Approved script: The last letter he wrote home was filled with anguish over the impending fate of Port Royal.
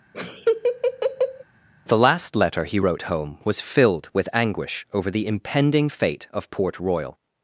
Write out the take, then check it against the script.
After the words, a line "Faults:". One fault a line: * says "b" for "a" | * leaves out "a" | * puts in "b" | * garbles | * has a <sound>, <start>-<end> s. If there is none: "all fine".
The last letter he wrote home was filled with anguish over the impending fate of Port Royal.
Faults:
* has a laugh, 0.1-1.4 s